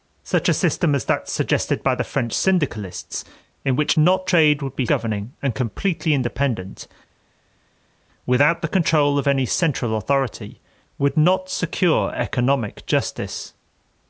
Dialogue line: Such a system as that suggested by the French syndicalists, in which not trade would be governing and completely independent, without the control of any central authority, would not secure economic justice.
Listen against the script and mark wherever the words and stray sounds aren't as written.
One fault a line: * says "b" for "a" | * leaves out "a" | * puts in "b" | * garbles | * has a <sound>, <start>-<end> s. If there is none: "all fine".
all fine